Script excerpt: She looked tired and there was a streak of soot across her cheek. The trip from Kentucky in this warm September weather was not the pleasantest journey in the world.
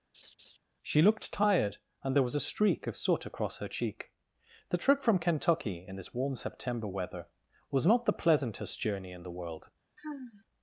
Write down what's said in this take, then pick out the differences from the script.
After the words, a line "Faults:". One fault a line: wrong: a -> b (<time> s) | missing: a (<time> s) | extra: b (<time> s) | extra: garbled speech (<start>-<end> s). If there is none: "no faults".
She looked tired and there was a streak of soot across her cheek. The trip from Kentucky in this warm September weather was not the pleasantest journey in the world.
Faults:
no faults